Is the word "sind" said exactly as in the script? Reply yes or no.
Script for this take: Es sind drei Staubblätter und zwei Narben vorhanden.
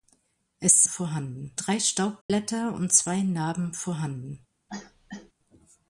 no